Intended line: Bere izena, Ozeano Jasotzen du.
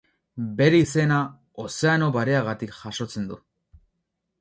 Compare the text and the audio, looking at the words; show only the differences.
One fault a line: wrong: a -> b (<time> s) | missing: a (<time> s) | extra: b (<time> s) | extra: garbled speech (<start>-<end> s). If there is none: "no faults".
extra: Bareagatik (2.2 s)